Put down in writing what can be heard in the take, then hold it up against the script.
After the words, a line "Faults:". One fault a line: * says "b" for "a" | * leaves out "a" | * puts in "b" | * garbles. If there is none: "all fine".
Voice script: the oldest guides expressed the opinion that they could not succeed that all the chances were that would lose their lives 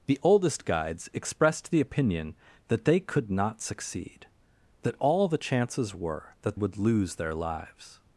the oldest guides expressed the opinion that they could not succeed that all the chances were that would lose their lives
Faults:
all fine